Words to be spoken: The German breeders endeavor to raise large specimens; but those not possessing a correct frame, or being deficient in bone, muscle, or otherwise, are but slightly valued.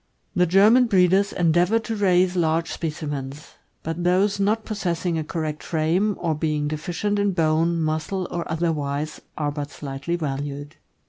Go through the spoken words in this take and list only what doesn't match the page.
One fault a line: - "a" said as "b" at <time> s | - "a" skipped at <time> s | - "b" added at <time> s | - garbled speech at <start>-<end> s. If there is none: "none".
none